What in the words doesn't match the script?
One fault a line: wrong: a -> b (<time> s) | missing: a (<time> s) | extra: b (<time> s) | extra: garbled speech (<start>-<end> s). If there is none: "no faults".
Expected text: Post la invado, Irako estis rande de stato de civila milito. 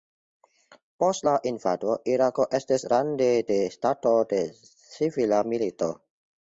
no faults